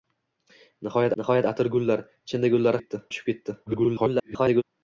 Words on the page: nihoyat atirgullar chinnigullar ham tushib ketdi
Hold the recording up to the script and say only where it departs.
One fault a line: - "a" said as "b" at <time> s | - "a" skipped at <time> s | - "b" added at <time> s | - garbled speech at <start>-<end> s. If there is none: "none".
- "nihoyat" added at 1.2 s
- "ham" said as "ketdi" at 2.8 s
- garbled speech at 3.7-4.6 s